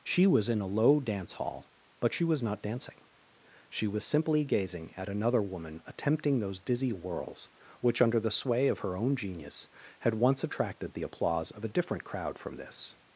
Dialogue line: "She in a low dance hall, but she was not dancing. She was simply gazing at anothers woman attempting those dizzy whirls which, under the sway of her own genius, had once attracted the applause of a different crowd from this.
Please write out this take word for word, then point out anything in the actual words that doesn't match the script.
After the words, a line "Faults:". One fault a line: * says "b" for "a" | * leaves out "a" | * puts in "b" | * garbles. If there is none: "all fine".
"She was in a low dance hall, but she was not dancing. She was simply gazing at another woman attempting those dizzy whirls which, under the sway of her own genius, had once attracted the applause of a different crowd from this.
Faults:
* puts in "was"
* says "another" for "anothers"